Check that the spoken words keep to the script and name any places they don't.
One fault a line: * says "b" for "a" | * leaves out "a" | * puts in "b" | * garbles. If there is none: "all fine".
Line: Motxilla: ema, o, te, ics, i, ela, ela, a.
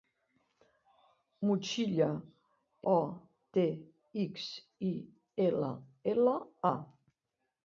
* leaves out "ema"